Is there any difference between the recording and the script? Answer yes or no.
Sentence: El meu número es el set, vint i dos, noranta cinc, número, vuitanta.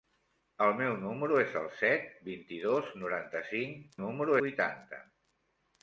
no